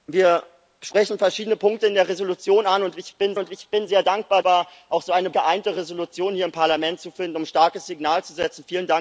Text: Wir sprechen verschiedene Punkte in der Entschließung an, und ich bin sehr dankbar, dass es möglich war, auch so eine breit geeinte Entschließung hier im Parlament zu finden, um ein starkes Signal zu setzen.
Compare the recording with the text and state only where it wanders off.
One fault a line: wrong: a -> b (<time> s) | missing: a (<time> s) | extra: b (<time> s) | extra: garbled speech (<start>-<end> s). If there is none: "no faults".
wrong: sehr dankbar dass es möglich -> und ich bin sehr dankbar (3.4 s)
missing: breit (5.3 s)